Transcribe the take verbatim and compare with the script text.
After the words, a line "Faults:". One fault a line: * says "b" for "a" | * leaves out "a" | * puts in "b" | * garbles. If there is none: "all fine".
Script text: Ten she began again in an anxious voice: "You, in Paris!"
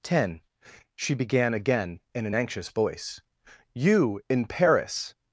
Ten she began again in an anxious voice: "You, in Paris!"
Faults:
all fine